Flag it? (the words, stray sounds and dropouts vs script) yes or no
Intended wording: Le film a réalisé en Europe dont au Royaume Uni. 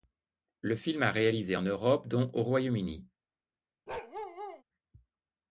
yes